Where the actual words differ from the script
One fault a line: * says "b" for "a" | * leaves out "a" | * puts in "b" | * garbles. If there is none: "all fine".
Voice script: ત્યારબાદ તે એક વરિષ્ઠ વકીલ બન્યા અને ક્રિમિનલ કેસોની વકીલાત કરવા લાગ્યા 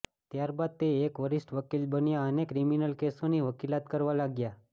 all fine